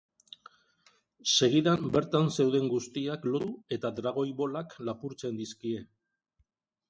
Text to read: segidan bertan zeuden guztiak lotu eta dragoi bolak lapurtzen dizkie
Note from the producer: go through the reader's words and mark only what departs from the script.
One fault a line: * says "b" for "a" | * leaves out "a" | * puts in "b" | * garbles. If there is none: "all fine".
all fine